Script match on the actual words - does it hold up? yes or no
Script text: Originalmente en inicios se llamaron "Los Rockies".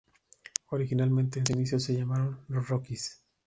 yes